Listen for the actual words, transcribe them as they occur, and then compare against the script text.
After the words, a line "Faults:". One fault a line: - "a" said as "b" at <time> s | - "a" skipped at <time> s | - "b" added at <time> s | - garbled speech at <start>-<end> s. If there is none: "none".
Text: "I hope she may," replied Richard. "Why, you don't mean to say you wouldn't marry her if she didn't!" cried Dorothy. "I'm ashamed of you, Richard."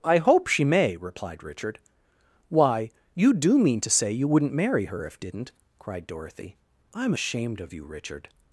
"I hope she may," replied Richard. "Why, you do mean to say you wouldn't marry her if didn't!" cried Dorothy. "I'm ashamed of you, Richard."
Faults:
- "don't" said as "do" at 3.3 s
- "she" skipped at 5.2 s